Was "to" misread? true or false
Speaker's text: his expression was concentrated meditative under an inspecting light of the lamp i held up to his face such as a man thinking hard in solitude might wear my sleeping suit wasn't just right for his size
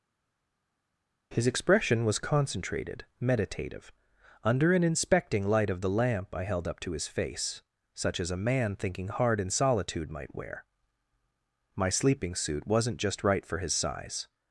false